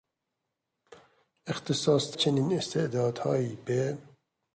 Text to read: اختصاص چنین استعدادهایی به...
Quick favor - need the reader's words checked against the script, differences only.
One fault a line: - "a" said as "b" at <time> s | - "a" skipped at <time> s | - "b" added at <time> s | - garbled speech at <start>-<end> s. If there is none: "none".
none